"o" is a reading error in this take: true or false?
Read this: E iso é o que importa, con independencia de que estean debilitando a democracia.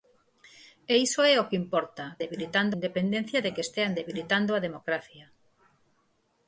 false